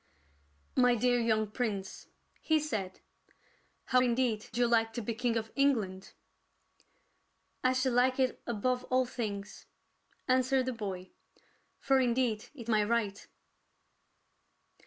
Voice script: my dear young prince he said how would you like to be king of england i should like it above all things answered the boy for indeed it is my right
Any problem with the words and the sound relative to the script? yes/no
yes